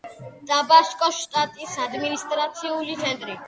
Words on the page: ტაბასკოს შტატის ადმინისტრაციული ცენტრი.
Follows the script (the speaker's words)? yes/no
yes